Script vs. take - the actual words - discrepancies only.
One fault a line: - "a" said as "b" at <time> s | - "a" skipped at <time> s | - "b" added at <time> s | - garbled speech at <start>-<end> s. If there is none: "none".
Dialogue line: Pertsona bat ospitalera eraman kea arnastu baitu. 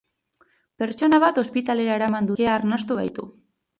none